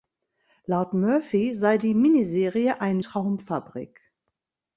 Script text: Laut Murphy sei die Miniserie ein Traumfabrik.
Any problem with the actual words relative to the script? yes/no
no